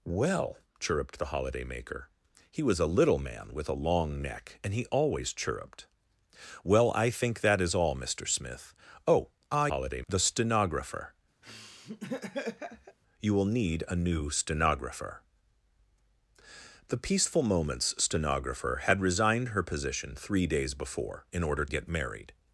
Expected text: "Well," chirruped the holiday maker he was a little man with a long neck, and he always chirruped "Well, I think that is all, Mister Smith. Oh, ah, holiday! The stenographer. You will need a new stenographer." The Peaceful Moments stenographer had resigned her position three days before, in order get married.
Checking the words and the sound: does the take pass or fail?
fail